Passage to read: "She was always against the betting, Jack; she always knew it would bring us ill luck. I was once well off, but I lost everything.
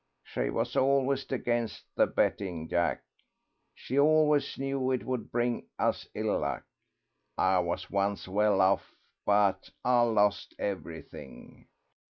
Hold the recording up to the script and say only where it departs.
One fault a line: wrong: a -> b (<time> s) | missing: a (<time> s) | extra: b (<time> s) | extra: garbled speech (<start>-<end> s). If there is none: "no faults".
no faults